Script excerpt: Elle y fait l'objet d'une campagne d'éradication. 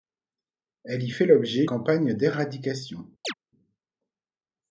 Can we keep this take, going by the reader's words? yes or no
no